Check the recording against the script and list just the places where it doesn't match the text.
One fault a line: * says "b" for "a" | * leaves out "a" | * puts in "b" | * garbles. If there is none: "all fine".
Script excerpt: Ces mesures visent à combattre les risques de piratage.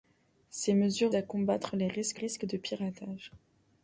* leaves out "visent"
* puts in "risques"